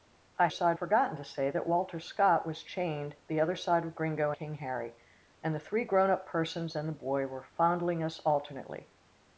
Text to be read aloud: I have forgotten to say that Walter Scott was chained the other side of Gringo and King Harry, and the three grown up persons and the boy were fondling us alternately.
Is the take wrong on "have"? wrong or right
wrong